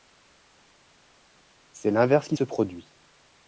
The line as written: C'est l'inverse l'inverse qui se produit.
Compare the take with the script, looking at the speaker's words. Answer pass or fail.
fail